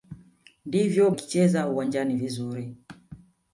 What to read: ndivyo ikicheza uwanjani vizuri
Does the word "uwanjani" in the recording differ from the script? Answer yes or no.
no